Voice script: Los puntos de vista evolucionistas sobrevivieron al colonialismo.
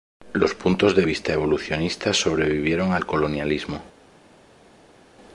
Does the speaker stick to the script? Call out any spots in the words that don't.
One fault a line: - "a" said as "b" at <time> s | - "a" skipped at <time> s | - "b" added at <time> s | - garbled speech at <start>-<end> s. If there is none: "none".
none